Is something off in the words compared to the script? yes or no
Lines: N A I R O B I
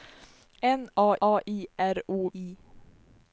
yes